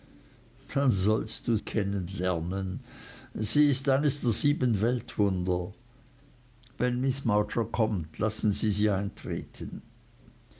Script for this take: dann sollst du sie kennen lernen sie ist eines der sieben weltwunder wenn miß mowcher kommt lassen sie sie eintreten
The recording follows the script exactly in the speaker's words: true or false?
false